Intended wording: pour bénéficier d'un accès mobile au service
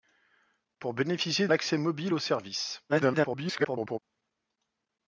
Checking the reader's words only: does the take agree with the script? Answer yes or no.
no